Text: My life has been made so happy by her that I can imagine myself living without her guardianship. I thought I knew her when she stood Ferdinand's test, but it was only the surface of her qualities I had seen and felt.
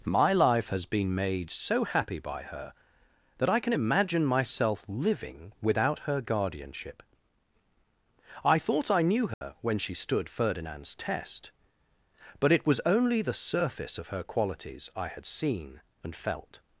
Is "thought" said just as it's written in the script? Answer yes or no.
yes